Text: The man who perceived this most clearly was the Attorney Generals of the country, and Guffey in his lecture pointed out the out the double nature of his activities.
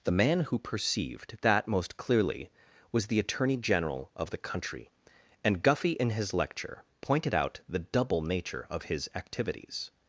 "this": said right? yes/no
no